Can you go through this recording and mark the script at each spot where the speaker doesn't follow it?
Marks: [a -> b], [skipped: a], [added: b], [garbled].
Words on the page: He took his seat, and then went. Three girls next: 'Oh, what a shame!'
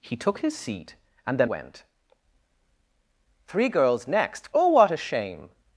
He took his seat, and then went. Three girls next: 'Oh, what a shame!'